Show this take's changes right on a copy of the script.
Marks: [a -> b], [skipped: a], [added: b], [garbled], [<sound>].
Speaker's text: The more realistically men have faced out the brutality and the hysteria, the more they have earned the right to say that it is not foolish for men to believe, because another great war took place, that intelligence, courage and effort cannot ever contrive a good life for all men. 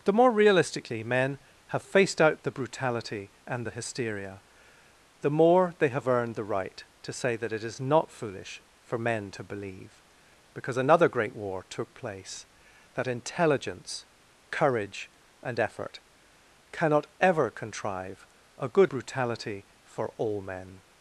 The more realistically men have faced out the brutality and the hysteria, the more they have earned the right to say that it is not foolish for men to believe, because another great war took place, that intelligence, courage and effort cannot ever contrive a good [life -> brutality] for all men.